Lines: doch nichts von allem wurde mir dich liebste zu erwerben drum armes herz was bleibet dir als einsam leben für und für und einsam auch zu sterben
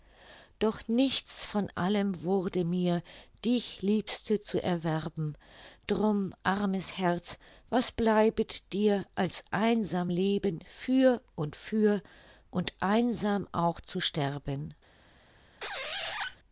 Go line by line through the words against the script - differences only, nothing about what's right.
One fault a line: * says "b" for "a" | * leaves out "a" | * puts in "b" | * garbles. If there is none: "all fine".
all fine